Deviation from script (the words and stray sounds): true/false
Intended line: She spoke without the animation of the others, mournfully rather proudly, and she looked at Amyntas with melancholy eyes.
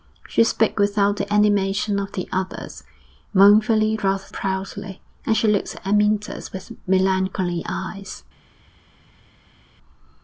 false